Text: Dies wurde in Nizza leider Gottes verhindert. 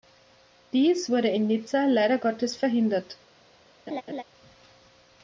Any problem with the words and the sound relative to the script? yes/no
yes